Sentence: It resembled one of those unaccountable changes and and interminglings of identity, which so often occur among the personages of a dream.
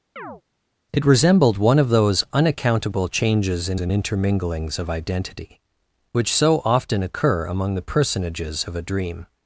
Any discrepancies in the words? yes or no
no